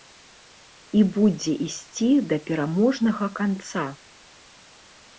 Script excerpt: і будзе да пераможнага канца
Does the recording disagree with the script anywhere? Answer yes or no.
yes